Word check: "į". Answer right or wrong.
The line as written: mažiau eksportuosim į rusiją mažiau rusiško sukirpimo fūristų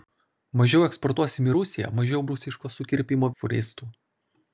right